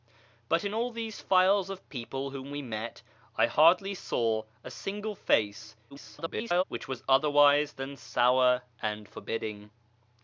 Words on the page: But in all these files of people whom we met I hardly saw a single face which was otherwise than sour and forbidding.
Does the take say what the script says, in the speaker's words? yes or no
no